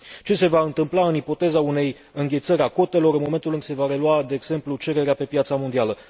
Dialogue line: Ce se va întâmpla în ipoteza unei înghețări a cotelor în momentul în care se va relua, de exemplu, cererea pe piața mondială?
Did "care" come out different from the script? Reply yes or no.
yes